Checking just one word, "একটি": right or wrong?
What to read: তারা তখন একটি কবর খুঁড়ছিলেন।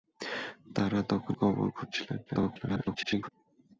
wrong